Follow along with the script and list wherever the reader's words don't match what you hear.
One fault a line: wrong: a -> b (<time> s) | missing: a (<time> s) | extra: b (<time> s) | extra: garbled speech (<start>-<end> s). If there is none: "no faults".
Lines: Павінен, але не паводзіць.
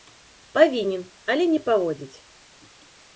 no faults